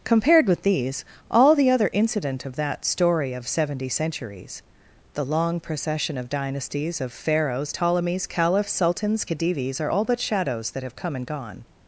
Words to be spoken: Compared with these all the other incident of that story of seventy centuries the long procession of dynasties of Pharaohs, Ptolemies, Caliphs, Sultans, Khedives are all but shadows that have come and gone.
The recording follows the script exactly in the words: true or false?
true